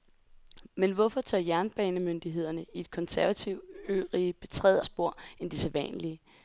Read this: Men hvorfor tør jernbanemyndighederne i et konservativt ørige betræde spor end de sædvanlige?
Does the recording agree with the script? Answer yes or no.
yes